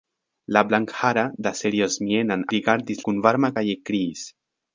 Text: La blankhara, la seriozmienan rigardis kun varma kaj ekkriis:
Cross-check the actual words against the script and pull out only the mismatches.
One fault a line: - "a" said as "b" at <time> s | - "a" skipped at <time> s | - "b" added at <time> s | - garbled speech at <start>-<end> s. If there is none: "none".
none